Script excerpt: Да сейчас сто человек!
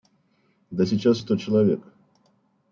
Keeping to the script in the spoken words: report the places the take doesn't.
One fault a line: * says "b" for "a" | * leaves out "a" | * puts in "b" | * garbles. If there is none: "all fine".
all fine